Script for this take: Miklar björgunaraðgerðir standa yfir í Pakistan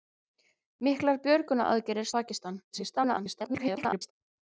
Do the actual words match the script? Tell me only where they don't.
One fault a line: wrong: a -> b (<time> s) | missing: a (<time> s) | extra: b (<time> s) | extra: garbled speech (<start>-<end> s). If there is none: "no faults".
missing: standa yfir (2.1 s)
extra: garbled speech (2.7-4.1 s)